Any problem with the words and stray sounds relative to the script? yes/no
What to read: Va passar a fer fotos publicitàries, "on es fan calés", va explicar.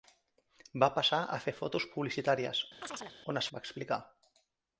yes